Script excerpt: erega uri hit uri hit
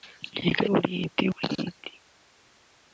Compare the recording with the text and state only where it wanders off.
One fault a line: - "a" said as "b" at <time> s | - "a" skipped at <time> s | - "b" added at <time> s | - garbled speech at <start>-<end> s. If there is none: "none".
none